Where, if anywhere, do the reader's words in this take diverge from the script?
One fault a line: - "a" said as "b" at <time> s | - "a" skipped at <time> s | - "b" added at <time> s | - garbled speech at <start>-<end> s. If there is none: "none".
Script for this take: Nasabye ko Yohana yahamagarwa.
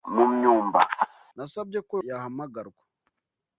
- "Yohana" skipped at 1.9 s